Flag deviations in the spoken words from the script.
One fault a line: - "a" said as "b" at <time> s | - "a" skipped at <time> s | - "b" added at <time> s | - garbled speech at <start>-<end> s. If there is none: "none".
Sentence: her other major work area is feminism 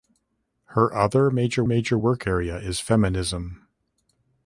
- "major" added at 1.6 s